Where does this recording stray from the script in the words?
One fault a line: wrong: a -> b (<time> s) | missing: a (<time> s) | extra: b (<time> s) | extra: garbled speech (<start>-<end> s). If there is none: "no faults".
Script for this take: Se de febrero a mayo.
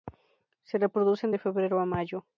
extra: reproducen (0.8 s)